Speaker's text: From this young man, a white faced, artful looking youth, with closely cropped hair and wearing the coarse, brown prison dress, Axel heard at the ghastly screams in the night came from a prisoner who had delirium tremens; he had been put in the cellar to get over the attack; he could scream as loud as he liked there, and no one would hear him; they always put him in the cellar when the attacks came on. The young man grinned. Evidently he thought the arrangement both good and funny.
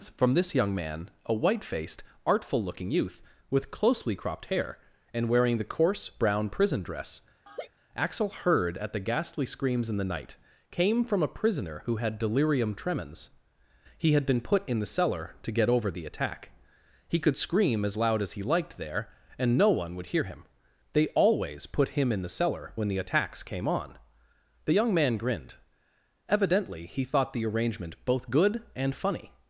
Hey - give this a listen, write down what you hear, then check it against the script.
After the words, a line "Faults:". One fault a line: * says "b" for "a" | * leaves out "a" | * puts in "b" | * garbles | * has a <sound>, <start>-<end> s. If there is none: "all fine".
From this young man, a white faced, artful looking youth, with closely cropped hair and wearing the coarse, brown prison dress, Axel heard at the ghastly screams in the night came from a prisoner who had delirium tremens; he had been put in the cellar to get over the attack; he could scream as loud as he liked there, and no one would hear him; they always put him in the cellar when the attacks came on. The young man grinned. Evidently he thought the arrangement both good and funny.
Faults:
* has a laugh, 7.5-7.7 s